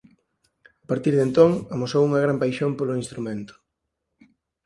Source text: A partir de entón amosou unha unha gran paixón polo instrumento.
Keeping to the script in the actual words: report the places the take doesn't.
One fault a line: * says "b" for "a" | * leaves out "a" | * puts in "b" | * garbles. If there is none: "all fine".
* leaves out "unha"